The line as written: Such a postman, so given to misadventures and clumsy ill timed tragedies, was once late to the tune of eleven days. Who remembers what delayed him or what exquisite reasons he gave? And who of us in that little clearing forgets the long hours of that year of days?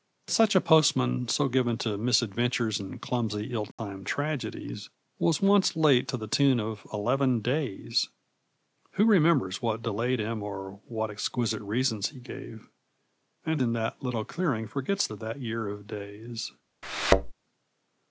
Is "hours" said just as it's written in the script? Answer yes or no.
no